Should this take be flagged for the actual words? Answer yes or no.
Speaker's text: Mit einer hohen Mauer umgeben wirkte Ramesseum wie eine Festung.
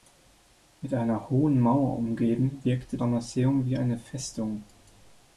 no